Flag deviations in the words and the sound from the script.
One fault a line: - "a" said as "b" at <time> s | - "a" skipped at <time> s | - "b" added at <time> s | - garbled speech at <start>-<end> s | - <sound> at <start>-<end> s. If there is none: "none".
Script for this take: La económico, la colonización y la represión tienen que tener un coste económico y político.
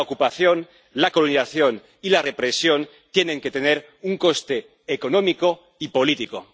- "económico" said as "ocupación" at 0.1 s